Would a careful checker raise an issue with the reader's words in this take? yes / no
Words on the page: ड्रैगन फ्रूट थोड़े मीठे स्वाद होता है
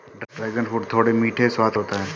no